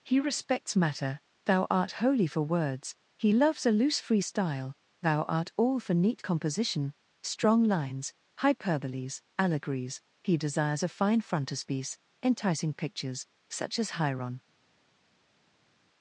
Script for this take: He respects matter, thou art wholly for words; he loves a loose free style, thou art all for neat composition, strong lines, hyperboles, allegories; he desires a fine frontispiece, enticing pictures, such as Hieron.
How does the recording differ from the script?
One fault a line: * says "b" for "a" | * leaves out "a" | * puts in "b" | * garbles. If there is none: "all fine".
all fine